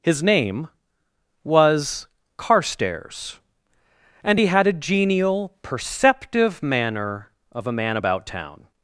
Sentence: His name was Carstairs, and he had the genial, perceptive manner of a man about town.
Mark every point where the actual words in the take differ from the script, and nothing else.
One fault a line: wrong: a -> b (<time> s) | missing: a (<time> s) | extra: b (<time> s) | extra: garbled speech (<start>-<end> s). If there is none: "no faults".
wrong: the -> a (4.7 s)